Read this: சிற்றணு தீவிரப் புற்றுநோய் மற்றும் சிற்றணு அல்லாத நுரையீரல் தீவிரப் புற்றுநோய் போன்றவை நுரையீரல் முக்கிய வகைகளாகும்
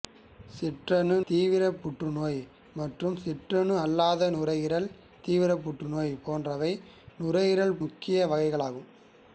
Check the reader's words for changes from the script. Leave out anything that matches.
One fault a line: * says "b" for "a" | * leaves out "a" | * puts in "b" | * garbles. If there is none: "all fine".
all fine